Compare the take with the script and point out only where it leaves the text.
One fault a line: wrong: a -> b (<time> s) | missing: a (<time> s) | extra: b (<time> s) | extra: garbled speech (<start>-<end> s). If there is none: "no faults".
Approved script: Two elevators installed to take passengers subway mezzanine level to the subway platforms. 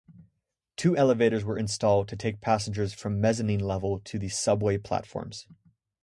extra: were (1.4 s)
wrong: subway -> from (2.9 s)